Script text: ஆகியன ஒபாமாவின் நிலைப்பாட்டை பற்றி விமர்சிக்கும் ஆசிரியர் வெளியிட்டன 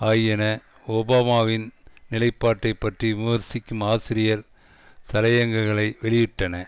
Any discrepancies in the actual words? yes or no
yes